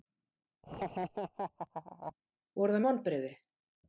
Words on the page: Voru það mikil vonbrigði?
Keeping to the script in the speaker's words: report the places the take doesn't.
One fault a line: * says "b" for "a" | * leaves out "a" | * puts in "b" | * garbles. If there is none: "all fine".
* leaves out "mikil"